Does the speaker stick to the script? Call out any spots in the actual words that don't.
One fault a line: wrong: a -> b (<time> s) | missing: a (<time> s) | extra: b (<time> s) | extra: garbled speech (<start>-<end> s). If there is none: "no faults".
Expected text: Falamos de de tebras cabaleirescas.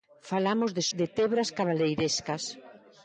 no faults